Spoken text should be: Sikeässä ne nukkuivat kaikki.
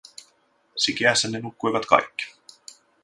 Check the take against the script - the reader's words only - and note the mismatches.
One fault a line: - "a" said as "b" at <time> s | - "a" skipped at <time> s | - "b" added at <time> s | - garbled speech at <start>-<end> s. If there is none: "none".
none